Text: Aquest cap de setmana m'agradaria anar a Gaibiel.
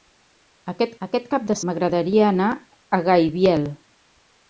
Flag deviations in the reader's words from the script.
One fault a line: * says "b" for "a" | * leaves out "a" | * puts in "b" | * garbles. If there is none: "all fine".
* puts in "aquest"
* leaves out "setmana"